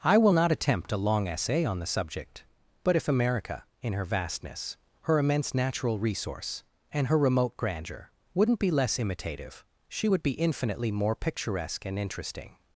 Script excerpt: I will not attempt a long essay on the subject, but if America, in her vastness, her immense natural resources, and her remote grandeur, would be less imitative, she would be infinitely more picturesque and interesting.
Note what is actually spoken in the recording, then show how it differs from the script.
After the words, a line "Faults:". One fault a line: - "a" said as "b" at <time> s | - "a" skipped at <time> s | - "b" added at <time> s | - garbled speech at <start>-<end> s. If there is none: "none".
I will not attempt a long essay on the subject, but if America, in her vastness, her immense natural resource, and her remote grandeur, wouldn't be less imitative, she would be infinitely more picturesque and interesting.
Faults:
- "resources" said as "resource" at 6.0 s
- "would" said as "wouldn't" at 8.3 s